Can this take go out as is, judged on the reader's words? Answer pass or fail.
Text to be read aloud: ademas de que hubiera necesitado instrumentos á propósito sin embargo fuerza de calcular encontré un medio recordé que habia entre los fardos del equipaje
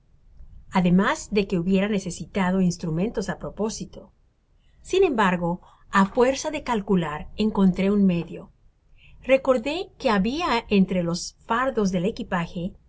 fail